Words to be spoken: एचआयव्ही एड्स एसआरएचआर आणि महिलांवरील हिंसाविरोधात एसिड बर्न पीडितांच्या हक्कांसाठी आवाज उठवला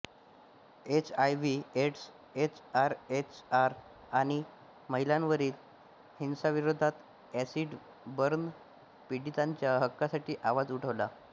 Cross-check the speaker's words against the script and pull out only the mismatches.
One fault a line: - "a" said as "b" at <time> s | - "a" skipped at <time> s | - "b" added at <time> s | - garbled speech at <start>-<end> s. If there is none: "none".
none